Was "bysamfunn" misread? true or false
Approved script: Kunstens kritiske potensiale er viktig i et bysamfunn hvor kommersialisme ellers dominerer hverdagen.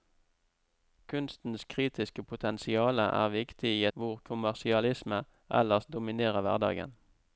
true